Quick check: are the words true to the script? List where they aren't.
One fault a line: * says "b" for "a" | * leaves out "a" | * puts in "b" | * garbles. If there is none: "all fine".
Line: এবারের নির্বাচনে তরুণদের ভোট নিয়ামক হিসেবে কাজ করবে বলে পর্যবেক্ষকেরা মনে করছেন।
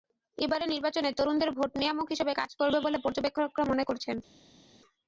all fine